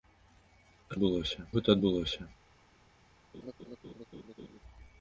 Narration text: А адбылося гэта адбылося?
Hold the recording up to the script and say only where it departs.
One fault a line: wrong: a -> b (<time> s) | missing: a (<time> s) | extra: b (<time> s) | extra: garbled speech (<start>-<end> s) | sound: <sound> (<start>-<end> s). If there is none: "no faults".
sound: laugh (3.3-4.6 s)